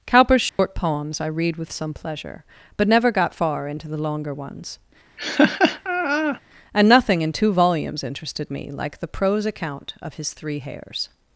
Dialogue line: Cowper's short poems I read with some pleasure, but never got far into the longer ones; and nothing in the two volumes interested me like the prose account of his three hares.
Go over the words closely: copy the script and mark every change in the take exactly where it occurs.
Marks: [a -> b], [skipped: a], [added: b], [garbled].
Cowper's short poems I read with some pleasure, but never got far into the longer ones; and nothing in [skipped: the] two volumes interested me like the prose account of his three hares.